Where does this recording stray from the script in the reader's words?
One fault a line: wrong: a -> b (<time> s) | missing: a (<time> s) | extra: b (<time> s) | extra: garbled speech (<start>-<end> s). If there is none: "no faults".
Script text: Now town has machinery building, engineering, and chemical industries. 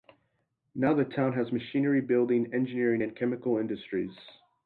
extra: the (0.9 s)